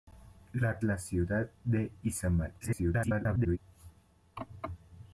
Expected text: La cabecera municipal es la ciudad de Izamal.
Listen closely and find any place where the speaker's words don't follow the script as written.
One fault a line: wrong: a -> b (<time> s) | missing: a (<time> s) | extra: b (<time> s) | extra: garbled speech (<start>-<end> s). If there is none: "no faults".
missing: cabecera municipal es (0.8 s)
extra: garbled speech (2.6-3.6 s)